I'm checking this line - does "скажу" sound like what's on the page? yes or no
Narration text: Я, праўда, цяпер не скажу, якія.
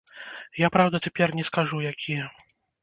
yes